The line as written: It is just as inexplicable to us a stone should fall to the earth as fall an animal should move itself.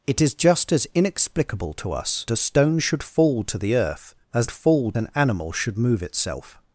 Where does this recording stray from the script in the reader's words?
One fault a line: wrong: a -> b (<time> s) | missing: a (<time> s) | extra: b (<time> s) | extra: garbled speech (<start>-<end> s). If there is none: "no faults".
no faults